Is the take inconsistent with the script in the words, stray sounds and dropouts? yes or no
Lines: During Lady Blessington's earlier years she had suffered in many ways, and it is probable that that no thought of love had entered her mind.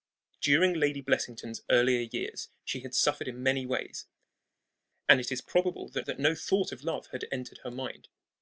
no